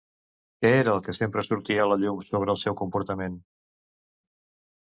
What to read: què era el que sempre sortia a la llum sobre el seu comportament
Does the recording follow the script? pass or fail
pass